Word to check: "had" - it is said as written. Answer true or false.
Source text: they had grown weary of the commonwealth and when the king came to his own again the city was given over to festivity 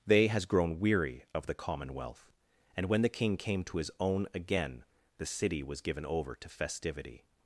false